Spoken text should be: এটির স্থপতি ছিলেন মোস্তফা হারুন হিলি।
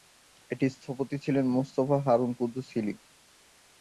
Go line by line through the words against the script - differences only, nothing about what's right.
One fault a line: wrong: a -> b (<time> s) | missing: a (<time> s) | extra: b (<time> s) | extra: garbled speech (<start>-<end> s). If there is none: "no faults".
extra: কুদ্দুস (2.4 s)